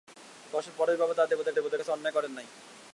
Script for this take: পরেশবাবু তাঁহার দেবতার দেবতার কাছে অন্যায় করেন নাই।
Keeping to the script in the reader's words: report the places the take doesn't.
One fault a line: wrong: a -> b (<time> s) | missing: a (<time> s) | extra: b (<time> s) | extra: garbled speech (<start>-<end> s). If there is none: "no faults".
no faults